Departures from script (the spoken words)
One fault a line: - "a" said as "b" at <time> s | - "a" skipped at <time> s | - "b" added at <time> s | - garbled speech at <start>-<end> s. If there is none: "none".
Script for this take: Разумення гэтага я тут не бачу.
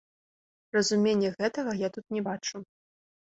none